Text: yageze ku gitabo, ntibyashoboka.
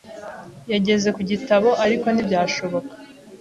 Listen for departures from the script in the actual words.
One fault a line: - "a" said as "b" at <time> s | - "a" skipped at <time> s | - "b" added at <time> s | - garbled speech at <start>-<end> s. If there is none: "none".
- "ariko" added at 1.8 s